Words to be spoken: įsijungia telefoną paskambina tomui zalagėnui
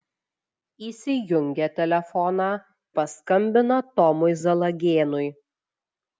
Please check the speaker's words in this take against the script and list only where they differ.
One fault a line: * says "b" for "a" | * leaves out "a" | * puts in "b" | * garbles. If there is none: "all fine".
all fine